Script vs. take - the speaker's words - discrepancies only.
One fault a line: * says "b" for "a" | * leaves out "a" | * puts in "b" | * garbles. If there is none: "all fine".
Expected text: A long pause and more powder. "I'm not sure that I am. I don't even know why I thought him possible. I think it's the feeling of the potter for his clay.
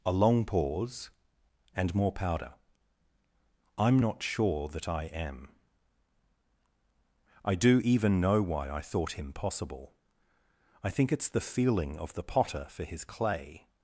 * says "do" for "don't"